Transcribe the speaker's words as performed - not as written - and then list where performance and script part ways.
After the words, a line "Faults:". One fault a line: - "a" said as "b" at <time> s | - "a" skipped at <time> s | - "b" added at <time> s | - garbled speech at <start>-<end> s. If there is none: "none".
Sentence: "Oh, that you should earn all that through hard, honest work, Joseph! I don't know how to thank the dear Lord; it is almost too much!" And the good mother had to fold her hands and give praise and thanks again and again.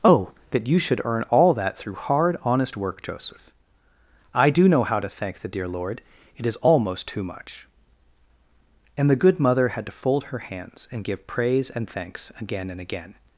"Oh, that you should earn all that through hard, honest work, Joseph! I do know how to thank the dear Lord; it is almost too much!" And the good mother had to fold her hands and give praise and thanks again and again.
Faults:
- "don't" said as "do" at 4.5 s